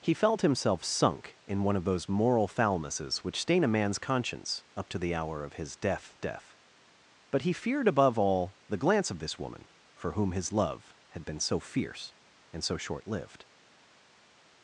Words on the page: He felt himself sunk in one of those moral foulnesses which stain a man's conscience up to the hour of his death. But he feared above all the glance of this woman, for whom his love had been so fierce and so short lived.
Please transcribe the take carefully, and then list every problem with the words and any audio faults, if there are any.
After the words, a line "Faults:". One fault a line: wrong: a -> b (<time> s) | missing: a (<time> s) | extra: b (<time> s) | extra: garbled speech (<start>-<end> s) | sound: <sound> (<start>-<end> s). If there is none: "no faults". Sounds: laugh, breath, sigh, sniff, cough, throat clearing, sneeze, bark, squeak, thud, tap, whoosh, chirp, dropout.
He felt himself sunk in one of those moral foulnesses which stain a man's conscience up to the hour of his death death. But he feared above all the glance of this woman, for whom his love had been so fierce and so short lived.
Faults:
extra: death (6.2 s)